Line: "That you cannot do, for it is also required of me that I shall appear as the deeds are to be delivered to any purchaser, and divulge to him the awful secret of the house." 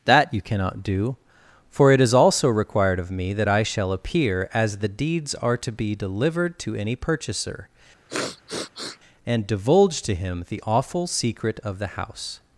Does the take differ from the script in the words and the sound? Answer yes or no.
yes